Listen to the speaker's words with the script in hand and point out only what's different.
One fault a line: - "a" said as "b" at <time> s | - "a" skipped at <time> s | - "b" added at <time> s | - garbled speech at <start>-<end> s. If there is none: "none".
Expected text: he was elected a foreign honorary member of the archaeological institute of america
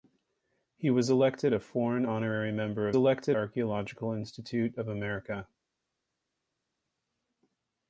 - "the" said as "elected" at 3.0 s